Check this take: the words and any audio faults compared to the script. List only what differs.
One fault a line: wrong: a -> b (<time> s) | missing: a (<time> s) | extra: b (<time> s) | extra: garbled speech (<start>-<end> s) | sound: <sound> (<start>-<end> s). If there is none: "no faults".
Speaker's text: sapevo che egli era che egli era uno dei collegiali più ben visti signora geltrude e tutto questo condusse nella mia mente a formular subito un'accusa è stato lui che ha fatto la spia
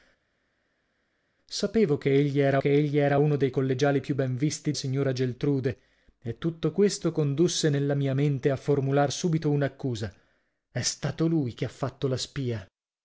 no faults